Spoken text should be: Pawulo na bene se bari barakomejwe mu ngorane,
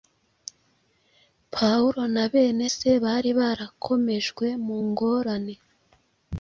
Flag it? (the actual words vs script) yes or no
no